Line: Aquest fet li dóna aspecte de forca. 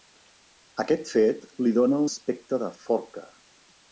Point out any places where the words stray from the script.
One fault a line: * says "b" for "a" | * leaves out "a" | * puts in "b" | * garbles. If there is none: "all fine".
all fine